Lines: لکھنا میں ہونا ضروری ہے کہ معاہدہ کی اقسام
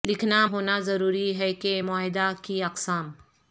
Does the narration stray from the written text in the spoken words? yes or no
yes